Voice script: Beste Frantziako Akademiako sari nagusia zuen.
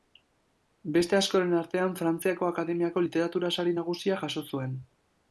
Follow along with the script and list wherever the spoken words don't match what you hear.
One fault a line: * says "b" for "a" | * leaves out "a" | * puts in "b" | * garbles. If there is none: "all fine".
* puts in "askoren artean"
* puts in "literatura"
* puts in "jaso"